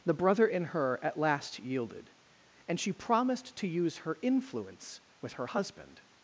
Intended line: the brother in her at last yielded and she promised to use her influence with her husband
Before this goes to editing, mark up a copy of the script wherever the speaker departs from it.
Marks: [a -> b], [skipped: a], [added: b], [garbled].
the brother in her at last yielded and she promised to use her influence with her husband